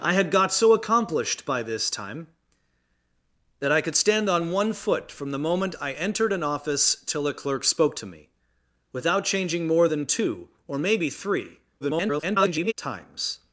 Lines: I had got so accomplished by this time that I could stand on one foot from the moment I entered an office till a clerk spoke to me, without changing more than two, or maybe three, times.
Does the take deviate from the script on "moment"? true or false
false